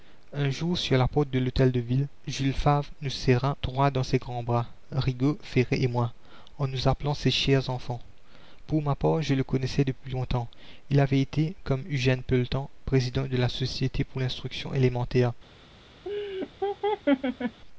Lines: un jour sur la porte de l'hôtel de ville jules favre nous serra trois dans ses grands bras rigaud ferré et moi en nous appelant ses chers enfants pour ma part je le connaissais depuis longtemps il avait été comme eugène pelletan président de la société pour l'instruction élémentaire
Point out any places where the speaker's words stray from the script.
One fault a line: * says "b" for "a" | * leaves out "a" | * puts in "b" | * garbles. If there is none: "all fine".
all fine